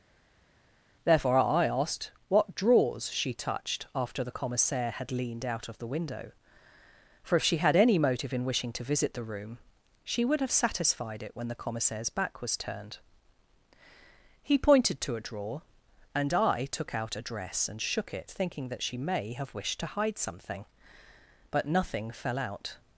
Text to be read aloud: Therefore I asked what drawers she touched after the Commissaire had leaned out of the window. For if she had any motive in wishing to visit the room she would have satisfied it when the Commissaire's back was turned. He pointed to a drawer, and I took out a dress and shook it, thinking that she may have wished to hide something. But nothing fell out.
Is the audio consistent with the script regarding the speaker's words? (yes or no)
yes